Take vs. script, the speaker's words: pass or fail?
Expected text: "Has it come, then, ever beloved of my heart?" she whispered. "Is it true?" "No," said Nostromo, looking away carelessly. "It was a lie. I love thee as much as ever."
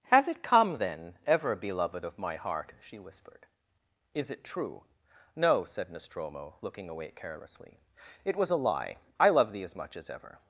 pass